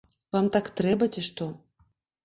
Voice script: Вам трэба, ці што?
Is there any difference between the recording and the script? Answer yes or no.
yes